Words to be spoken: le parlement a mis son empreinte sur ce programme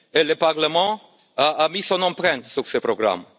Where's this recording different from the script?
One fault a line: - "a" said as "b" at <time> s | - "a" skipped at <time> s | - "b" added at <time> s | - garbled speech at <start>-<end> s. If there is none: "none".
none